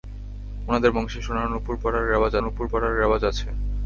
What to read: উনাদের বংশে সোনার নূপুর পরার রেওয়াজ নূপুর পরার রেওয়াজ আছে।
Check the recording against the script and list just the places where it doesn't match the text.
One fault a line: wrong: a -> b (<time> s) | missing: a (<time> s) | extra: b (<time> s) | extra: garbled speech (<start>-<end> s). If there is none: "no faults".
no faults